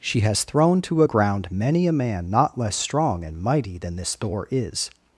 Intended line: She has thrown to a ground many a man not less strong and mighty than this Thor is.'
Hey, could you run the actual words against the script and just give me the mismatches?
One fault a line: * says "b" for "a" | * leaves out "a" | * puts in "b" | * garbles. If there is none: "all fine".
all fine